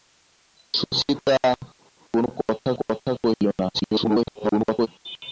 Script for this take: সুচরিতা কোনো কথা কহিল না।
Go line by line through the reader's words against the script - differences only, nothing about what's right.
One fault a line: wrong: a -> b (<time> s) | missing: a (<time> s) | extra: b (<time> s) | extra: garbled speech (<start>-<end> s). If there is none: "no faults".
extra: কথা (2.8 s)
extra: garbled speech (3.7-4.9 s)